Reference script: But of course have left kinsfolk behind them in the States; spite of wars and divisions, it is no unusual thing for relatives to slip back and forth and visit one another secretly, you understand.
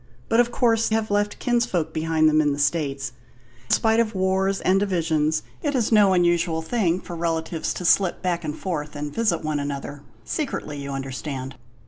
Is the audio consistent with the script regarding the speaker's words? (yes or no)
yes